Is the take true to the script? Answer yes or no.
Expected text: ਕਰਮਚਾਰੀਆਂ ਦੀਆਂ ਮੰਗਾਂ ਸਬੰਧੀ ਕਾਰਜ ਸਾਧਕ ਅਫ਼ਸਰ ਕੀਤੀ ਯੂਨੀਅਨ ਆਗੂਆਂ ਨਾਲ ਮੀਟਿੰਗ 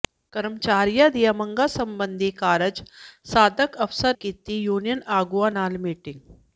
yes